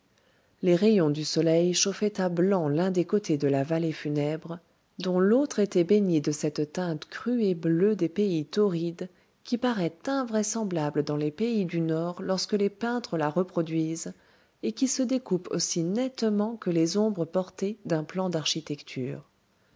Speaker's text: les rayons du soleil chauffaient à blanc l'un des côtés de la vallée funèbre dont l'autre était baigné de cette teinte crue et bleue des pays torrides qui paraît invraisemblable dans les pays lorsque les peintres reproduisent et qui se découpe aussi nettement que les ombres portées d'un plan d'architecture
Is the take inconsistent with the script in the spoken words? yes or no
yes